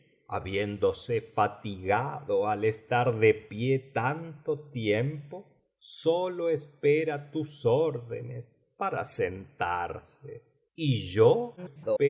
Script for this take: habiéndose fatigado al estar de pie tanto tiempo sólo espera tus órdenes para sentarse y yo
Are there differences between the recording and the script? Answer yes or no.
yes